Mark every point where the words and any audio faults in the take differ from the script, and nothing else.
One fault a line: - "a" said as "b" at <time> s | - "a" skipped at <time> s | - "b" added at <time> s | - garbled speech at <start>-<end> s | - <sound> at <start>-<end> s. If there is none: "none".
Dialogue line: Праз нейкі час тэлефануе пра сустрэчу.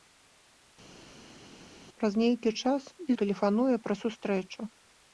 none